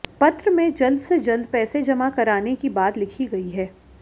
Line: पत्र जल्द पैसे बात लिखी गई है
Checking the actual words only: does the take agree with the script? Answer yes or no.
no